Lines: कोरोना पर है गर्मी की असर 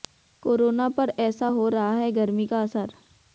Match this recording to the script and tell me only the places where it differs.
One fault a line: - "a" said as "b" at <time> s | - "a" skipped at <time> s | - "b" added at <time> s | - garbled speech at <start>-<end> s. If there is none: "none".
- "ऐसा हो रहा" added at 1.2 s
- "की" said as "का" at 2.5 s